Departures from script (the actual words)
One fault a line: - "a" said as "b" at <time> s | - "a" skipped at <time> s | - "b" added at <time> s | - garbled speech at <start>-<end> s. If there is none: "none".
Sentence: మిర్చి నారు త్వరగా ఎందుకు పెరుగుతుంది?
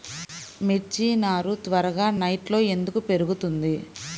- "నెట్లో" added at 2.2 s